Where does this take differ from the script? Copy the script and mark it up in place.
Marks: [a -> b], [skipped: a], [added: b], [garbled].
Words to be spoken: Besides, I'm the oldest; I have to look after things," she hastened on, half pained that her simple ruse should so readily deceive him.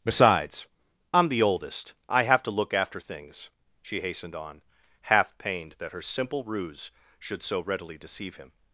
Besides, I'm the oldest; I have to look after things," she hastened on, half pained that her simple ruse should so readily deceive him.